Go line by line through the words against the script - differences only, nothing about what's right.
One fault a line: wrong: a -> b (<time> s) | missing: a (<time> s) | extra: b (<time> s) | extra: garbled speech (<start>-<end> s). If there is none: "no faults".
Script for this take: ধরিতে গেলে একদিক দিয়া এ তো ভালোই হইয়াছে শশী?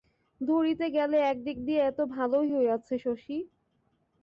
no faults